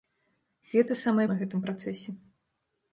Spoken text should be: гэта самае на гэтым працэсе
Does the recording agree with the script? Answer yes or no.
yes